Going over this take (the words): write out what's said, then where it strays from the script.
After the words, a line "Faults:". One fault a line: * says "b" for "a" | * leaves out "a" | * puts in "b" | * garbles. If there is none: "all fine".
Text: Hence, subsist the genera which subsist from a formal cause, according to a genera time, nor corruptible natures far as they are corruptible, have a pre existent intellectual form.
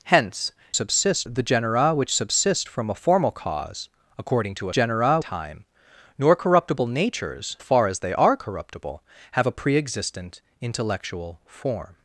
Hence, subsist the genera which subsist from a formal cause, according to a genera time, nor corruptible natures far as they are corruptible, have a pre existent intellectual form.
Faults:
all fine